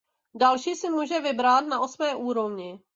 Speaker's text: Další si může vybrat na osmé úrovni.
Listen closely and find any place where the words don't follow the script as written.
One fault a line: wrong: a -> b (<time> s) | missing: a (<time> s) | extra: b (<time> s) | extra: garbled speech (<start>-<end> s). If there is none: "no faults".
no faults